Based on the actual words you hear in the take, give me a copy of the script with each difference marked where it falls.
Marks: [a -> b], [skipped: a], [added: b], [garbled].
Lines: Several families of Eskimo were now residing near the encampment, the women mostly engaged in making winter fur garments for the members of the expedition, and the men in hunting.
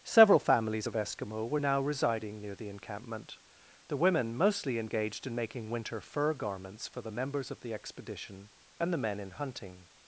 Several families of Eskimo were now residing near the encampment, the women mostly engaged in making winter fur garments for the members of the expedition, and the men in hunting.